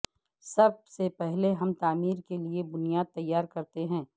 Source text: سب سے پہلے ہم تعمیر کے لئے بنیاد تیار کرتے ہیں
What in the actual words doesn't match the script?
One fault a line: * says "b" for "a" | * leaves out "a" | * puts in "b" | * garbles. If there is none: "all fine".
all fine